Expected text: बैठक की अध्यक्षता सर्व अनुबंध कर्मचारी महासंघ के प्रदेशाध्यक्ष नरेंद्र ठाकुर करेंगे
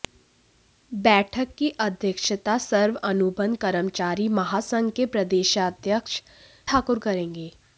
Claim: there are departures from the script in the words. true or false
true